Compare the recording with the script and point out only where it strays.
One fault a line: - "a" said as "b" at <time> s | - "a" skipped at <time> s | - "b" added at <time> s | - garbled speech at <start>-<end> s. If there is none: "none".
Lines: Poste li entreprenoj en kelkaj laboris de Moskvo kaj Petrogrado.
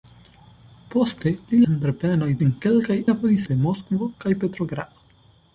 none